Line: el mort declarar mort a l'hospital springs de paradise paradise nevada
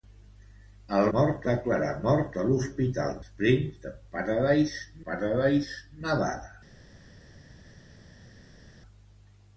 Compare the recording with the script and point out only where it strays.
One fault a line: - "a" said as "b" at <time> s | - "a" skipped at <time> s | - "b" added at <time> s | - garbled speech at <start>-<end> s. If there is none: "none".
none